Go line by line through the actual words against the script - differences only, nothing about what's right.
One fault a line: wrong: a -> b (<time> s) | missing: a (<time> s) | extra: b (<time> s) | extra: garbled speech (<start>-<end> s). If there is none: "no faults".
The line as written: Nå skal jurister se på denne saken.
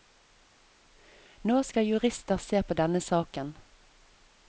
no faults